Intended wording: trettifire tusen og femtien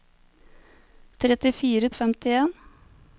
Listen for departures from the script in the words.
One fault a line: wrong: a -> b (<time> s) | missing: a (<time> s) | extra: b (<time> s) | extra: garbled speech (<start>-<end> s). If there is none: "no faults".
missing: tusen (1.9 s)